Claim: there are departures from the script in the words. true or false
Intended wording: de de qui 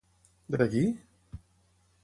false